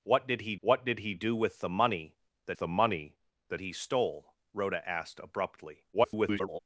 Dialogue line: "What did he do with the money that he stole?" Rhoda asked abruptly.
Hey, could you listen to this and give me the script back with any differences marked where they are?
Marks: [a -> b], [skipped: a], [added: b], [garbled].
"What did he [added: what did he] do with the money that [added: the money that] he stole?" Rhoda asked abruptly. [garbled]